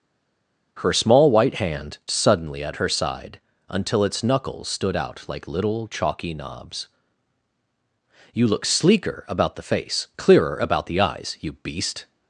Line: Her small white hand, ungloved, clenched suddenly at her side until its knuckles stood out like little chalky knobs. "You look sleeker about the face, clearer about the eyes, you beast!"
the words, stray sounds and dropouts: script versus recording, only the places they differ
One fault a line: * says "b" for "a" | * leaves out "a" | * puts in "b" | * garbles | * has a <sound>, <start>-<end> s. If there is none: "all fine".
* leaves out "ungloved clenched"